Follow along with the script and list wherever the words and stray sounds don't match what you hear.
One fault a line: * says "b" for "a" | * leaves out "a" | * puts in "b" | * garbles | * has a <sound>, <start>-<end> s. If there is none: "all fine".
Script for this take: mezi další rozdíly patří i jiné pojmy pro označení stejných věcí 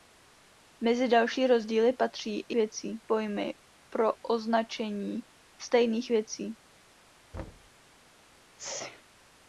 * says "věcí" for "jiné"
* has a thud, 7.3-7.7 s
* has a sneeze, 8.6-9.0 s